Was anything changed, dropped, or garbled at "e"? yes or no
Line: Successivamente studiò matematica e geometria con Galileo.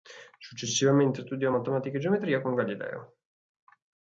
no